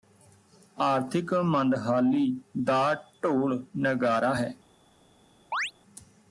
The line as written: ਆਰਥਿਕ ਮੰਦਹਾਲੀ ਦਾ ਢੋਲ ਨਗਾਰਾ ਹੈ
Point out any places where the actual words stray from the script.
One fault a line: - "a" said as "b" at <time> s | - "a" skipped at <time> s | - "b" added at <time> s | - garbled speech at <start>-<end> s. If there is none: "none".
none